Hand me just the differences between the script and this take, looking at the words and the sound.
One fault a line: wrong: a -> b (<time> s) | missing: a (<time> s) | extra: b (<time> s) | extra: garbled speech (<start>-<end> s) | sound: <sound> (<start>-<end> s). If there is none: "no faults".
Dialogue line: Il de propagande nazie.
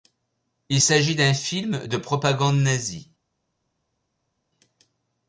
extra: s'agit d'un film (0.8 s)